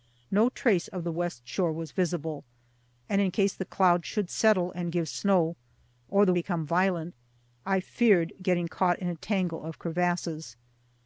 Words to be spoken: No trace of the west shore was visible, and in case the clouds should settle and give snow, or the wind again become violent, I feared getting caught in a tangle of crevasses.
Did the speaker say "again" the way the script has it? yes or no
no